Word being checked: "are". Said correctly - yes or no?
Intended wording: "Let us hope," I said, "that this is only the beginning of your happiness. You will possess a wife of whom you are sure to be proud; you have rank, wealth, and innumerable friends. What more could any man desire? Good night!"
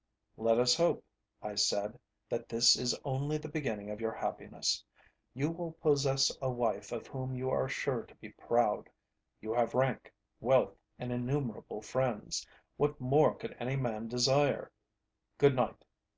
yes